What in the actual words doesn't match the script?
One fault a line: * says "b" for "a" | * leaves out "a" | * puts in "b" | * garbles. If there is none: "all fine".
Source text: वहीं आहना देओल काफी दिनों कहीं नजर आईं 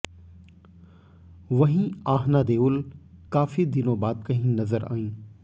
* puts in "बाद"